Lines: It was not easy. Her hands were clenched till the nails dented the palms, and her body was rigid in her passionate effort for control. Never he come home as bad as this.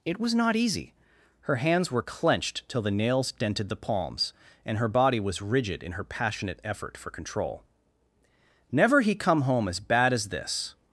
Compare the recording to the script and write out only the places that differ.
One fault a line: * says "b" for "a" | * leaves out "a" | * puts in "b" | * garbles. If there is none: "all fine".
all fine